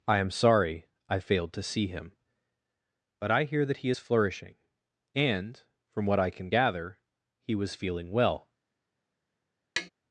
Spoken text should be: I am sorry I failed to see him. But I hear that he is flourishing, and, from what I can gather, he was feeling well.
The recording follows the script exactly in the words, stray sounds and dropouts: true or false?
false